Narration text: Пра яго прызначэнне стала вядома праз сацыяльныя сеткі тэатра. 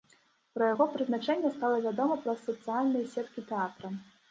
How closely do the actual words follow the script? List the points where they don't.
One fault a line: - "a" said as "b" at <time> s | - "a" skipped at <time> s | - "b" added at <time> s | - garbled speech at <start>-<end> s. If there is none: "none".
none